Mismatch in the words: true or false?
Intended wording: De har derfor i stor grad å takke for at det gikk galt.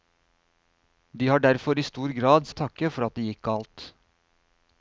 false